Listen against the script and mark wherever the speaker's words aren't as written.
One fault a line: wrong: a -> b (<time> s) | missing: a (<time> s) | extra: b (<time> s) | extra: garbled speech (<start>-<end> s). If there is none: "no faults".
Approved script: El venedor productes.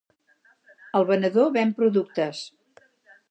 extra: ven (1.6 s)